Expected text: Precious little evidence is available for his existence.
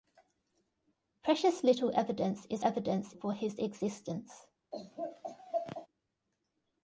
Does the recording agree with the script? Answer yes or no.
no